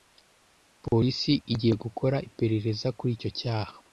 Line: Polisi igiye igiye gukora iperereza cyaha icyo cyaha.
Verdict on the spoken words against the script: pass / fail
fail